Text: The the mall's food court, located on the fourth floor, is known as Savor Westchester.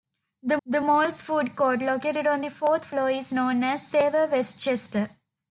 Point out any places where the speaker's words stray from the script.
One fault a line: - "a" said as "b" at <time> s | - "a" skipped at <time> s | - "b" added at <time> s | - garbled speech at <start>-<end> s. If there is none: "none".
none